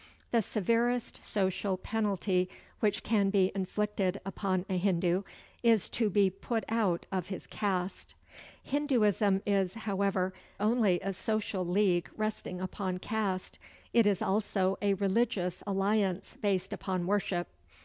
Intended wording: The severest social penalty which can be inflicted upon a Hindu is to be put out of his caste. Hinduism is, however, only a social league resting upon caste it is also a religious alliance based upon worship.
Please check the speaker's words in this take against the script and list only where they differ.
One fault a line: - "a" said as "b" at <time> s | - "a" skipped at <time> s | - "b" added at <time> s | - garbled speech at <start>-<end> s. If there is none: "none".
none